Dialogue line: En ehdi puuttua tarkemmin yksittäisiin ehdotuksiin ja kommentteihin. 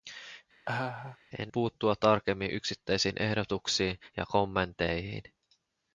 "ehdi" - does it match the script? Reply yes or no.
no